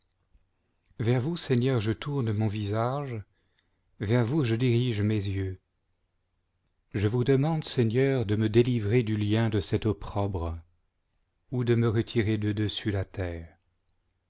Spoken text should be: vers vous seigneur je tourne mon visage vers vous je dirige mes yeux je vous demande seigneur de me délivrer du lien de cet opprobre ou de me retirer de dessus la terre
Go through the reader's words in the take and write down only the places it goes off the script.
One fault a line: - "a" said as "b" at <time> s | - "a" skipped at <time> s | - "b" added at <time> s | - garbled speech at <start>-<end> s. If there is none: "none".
none